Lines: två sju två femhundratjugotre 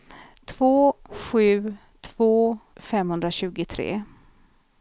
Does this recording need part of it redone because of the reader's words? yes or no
no